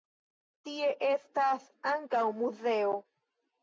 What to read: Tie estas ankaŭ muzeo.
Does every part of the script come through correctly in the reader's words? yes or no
yes